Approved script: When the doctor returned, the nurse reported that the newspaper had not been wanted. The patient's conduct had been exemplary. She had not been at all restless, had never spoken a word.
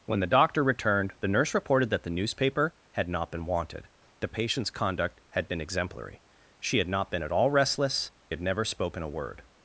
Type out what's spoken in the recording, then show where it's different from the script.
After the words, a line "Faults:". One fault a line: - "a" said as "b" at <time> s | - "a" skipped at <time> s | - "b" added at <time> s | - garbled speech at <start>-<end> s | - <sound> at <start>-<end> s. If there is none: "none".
When the doctor returned, the nurse reported that the newspaper had not been wanted. The patient's conduct had been exemplary. She had not been at all restless, had never spoken a word.
Faults:
none